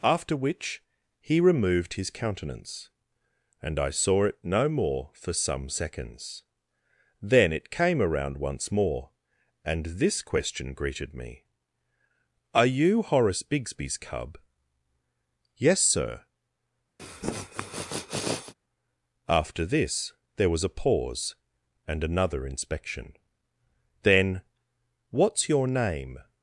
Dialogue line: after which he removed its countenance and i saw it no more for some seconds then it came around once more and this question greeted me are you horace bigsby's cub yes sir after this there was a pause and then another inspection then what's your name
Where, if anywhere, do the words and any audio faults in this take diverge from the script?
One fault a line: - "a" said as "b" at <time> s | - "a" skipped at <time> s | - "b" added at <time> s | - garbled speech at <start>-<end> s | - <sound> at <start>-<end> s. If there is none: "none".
- "its" said as "his" at 1.9 s
- sniff at 17.0-18.5 s
- "then" skipped at 22.0 s